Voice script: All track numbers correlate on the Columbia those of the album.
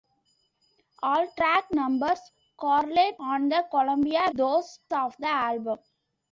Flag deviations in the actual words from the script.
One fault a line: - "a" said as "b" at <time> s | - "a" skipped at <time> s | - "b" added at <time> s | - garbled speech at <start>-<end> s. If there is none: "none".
none